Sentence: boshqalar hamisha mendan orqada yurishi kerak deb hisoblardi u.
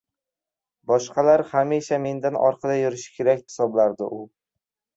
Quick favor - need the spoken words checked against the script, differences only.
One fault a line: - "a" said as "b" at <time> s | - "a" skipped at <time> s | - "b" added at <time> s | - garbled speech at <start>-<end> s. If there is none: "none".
- "deb" skipped at 3.5 s